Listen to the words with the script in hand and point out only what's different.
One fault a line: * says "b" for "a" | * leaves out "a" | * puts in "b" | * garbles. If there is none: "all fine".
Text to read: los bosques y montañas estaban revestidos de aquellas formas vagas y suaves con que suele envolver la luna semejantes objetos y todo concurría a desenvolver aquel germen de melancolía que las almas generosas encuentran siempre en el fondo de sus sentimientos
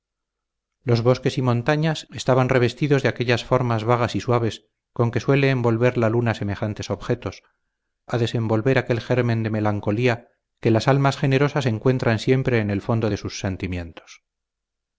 * leaves out "y todo concurría"